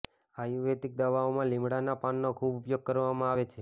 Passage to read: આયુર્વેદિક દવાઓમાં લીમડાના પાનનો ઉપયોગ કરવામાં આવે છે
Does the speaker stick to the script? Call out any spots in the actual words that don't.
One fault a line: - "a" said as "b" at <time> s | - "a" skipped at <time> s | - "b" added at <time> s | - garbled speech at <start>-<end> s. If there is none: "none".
- "ખૂબ" added at 2.4 s